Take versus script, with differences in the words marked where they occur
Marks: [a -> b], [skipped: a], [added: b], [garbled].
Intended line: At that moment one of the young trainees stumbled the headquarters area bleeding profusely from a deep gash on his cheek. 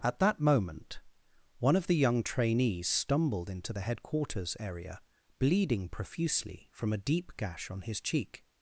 At that moment one of the young trainees stumbled [added: into] the headquarters area bleeding profusely from a deep gash on his cheek.